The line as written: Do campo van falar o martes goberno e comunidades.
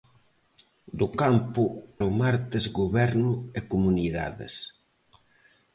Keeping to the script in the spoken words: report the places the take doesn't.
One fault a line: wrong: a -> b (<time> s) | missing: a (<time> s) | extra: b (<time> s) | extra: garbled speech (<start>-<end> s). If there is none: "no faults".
missing: van falar (1.6 s)